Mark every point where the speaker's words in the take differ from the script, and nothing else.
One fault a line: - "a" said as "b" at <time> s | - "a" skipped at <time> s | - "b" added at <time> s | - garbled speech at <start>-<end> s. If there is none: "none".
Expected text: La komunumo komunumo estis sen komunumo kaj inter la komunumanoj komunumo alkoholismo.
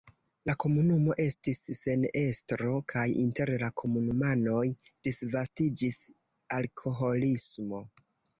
- "komunumo" skipped at 1.2 s
- "komunumo" said as "estro" at 2.2 s
- "komunumo" said as "disvastiĝis" at 5.1 s